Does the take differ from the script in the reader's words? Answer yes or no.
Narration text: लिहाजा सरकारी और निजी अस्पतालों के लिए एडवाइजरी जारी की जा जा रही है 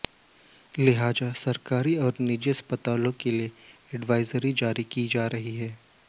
yes